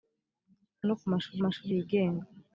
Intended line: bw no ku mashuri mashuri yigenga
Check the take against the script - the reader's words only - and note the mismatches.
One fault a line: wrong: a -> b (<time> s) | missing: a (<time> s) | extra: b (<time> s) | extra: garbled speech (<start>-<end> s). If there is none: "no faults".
no faults